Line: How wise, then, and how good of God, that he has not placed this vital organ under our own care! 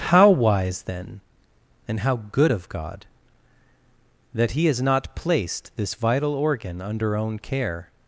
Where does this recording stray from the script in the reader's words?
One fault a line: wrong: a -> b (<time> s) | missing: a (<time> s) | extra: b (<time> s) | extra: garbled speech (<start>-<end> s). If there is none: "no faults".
missing: our (7.1 s)